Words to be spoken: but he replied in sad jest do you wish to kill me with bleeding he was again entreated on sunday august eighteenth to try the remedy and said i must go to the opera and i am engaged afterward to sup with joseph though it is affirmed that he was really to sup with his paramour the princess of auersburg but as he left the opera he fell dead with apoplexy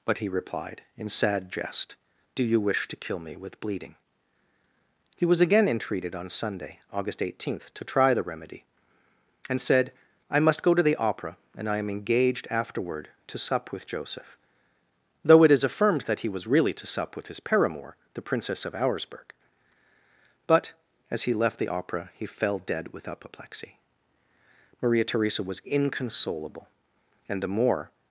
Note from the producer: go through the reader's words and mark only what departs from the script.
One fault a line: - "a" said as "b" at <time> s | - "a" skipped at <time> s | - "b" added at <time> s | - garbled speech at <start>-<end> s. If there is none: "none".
- "maria theresa was inconsolable and the more" added at 24.8 s